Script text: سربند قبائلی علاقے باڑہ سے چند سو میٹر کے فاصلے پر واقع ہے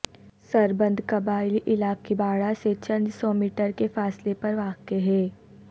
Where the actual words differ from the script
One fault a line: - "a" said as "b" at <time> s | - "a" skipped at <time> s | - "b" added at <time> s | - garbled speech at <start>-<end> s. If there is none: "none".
none